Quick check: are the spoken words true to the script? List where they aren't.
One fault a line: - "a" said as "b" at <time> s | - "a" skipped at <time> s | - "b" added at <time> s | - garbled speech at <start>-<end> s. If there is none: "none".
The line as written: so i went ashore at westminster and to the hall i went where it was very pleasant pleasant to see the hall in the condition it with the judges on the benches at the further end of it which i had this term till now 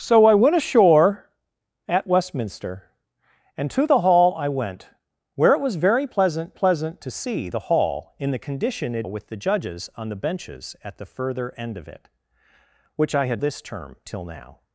none